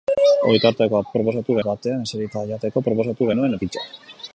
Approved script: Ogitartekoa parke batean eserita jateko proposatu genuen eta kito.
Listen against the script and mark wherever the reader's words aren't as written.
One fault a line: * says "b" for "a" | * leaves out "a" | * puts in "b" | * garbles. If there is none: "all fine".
* says "proposatu" for "parke"
* leaves out "eta"